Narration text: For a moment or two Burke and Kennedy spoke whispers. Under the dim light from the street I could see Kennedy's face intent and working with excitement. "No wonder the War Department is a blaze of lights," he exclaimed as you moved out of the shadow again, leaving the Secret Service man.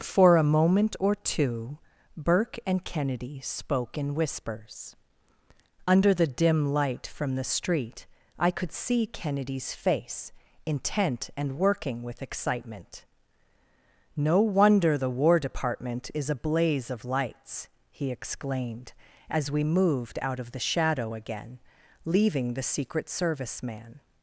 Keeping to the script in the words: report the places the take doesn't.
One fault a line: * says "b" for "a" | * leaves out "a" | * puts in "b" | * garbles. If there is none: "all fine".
* puts in "in"
* says "we" for "you"